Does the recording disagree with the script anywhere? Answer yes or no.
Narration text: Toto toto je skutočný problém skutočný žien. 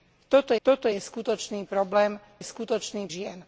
no